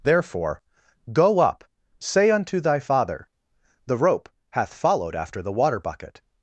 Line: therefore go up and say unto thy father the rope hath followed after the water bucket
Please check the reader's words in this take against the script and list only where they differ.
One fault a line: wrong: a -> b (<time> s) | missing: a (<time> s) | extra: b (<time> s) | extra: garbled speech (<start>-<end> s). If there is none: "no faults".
missing: and (1.6 s)